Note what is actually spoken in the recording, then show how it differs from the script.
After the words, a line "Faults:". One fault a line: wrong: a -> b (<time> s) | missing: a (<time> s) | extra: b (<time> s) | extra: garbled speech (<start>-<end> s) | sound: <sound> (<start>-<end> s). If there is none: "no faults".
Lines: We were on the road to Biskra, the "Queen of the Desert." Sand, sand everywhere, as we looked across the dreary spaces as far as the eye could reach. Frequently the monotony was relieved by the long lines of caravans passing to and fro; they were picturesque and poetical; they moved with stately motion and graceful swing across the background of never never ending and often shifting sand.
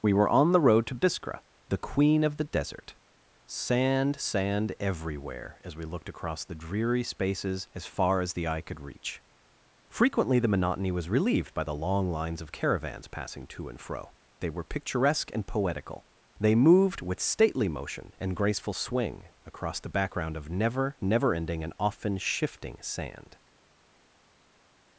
We were on the road to Biskra, the "Queen of the Desert." Sand, sand everywhere, as we looked across the dreary spaces as far as the eye could reach. Frequently the monotony was relieved by the long lines of caravans passing to and fro; they were picturesque and poetical; they moved with stately motion and graceful swing across the background of never never ending and often shifting sand.
Faults:
no faults